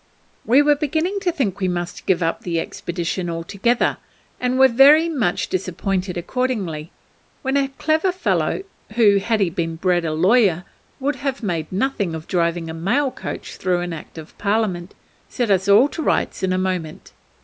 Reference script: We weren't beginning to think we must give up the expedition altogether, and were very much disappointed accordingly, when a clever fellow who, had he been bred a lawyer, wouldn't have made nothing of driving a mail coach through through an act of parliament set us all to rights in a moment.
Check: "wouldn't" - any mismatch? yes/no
yes